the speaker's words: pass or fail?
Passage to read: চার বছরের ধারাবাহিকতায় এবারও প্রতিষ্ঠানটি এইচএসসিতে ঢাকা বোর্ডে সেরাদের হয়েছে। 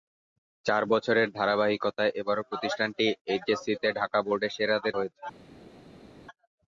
pass